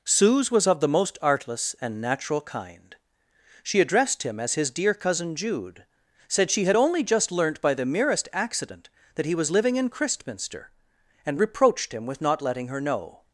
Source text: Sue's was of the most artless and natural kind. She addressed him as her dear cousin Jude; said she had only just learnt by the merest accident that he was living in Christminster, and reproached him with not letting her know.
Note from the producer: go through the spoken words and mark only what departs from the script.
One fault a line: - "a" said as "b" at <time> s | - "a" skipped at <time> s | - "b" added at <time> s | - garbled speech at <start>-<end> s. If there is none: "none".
- "her" said as "his" at 4.5 s